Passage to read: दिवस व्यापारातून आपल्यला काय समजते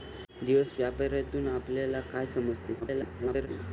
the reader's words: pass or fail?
fail